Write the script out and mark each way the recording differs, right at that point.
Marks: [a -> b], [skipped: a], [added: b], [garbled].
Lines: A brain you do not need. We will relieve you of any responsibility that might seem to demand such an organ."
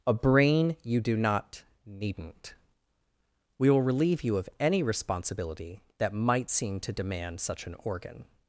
A brain you do not [need. -> needn't] We will relieve you of any responsibility that might seem to demand such an organ."